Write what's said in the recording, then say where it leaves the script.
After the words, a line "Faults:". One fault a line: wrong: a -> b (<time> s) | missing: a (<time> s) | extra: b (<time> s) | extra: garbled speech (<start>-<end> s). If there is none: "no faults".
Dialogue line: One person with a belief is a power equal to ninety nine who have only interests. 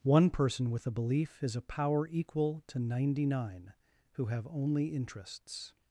One person with a belief is a power equal to ninety nine who have only interests.
Faults:
no faults